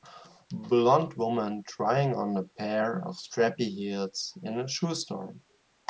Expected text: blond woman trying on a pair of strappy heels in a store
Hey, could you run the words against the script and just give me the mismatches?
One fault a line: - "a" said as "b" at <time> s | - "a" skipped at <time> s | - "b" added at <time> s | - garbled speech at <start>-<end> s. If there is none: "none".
- "shoe" added at 4.7 s